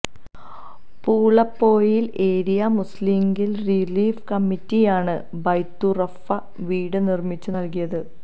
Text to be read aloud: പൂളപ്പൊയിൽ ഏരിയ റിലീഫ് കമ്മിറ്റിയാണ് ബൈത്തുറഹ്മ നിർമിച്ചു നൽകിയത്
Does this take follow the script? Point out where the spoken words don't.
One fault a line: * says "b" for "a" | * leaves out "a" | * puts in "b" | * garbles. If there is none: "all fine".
* puts in "മുസ്ലിംലീഗ്"
* puts in "വീട്"